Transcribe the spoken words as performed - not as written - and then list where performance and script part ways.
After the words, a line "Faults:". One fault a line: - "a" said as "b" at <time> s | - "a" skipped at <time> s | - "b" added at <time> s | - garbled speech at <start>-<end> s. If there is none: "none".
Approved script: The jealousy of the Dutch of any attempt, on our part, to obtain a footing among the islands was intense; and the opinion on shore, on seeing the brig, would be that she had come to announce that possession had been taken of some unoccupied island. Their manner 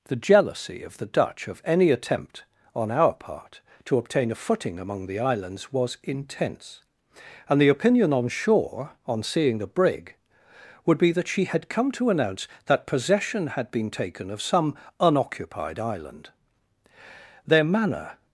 The jealousy of the Dutch of any attempt, on our part, to obtain a footing among the islands was intense; and the opinion on shore, on seeing the brig, would be that she had come to announce that possession had been taken of some unoccupied island. Their manner
Faults:
none